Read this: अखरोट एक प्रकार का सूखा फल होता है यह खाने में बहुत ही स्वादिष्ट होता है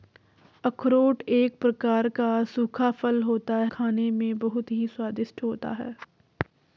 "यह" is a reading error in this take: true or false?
true